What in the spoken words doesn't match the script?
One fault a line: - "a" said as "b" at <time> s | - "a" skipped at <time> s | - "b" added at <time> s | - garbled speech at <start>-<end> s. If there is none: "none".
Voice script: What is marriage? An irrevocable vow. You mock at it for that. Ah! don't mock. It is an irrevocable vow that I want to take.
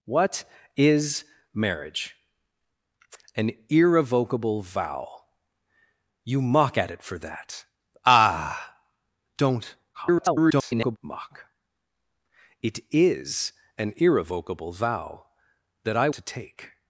- garbled speech at 9.9-11.0 s
- "want" skipped at 16.1 s